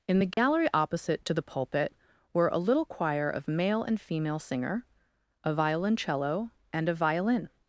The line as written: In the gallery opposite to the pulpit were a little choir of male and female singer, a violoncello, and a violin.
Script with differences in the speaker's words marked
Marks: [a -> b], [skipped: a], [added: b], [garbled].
In the gallery opposite to the pulpit were a little choir of male and female singer, a violoncello, and a violin.